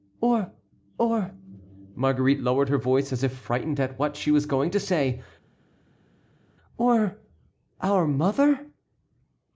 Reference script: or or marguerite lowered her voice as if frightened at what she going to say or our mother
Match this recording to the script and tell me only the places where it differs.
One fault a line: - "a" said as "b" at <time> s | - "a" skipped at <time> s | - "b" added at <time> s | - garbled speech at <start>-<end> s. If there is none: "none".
- "was" added at 4.3 s